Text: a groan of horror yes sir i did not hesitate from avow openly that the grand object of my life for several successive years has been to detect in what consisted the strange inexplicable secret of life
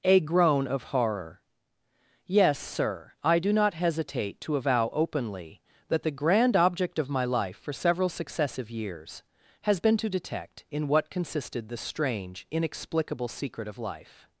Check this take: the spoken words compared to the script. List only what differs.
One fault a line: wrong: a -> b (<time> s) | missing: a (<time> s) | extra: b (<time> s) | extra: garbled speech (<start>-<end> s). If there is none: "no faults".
wrong: did -> do (3.4 s)
wrong: from -> to (4.4 s)